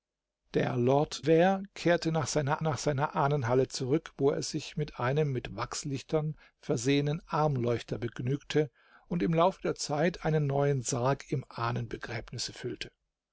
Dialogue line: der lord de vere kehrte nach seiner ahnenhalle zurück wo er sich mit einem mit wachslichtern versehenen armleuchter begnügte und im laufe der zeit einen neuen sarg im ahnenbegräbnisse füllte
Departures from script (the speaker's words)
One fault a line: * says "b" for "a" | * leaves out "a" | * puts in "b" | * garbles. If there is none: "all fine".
* leaves out "de"
* puts in "nach seiner"